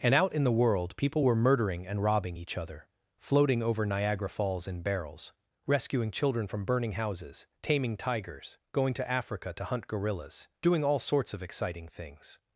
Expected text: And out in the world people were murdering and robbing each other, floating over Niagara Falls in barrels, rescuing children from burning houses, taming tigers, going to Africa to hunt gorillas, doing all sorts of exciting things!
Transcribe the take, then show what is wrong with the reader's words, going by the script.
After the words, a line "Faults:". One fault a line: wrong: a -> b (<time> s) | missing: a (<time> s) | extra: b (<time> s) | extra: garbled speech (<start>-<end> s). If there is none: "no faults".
And out in the world people were murdering and robbing each other, floating over Niagara Falls in barrels, rescuing children from burning houses, taming tigers, going to Africa to hunt gorillas, doing all sorts of exciting things!
Faults:
no faults